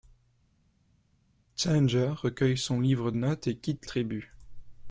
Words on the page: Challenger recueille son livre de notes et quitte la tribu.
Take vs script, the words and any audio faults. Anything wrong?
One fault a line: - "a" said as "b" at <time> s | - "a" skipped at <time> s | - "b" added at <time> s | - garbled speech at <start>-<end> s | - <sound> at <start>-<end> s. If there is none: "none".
- "de" skipped at 3.1 s
- "la" skipped at 3.9 s